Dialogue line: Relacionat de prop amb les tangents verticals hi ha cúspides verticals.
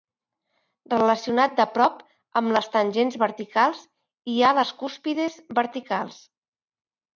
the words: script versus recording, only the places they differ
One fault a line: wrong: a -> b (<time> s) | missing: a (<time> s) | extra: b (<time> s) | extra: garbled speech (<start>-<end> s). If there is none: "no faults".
extra: les (4.6 s)